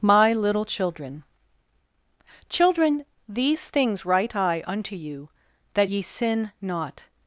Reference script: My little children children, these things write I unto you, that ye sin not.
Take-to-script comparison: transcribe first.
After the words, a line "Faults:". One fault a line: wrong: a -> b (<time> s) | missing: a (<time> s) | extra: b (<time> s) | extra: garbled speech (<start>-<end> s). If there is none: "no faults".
My little children children, these things write I unto you, that ye sin not.
Faults:
no faults